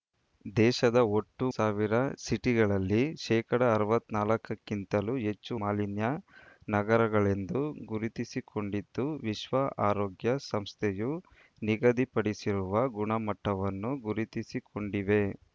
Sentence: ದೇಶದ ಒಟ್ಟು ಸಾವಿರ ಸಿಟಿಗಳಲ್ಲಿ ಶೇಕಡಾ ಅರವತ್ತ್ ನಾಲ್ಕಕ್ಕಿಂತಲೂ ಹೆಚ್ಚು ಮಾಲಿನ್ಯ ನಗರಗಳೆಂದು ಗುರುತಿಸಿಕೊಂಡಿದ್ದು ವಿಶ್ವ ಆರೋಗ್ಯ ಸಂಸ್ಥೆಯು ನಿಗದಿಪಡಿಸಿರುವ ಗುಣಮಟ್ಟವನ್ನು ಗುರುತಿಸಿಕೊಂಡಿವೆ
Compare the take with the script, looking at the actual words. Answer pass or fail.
pass